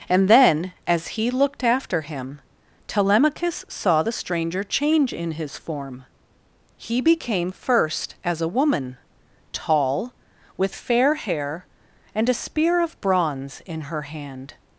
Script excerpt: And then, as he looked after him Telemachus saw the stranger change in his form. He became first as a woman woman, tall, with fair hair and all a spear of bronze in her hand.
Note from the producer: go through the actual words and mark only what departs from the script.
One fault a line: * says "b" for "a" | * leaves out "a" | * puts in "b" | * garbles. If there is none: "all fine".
* leaves out "woman"
* leaves out "all"